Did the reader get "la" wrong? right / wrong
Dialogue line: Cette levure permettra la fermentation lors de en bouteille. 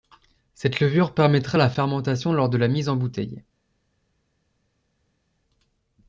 right